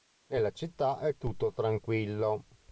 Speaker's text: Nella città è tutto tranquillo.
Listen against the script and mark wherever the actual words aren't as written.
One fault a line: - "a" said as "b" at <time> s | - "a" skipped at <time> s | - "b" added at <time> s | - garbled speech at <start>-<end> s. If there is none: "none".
none